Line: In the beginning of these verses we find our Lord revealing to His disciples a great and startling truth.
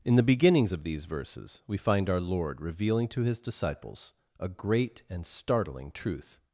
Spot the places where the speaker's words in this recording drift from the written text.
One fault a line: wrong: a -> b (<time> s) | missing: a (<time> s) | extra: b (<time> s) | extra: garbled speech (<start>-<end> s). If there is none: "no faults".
wrong: beginning -> beginnings (0.2 s)